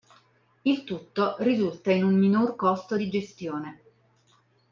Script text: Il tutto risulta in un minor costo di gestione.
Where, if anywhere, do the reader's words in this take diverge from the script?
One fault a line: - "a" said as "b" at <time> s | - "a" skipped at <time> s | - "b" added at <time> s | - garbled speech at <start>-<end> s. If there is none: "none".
none